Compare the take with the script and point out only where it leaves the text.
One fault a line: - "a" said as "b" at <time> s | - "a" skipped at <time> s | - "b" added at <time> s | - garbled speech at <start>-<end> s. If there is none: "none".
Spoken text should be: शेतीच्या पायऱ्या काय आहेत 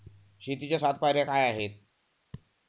- "सात" added at 0.8 s